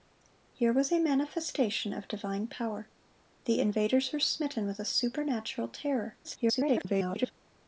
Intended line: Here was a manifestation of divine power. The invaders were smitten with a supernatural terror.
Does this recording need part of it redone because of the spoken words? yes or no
yes